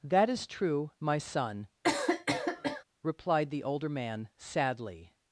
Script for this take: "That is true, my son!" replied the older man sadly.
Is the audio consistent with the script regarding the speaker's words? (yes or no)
yes